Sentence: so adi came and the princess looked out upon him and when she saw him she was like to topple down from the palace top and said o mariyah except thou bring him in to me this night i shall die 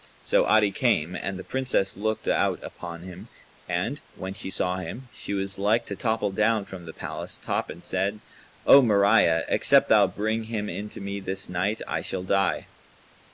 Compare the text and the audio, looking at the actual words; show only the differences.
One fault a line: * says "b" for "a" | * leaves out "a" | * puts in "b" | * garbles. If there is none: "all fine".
all fine